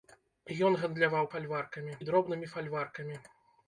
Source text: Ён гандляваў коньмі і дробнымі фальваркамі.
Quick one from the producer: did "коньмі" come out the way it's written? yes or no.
no